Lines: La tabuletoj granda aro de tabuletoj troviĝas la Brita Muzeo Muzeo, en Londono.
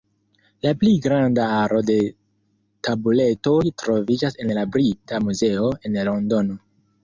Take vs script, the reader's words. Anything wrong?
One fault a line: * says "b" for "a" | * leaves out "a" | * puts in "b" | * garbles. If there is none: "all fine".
* says "pli" for "tabuletoj"
* puts in "en"
* leaves out "Muzeo"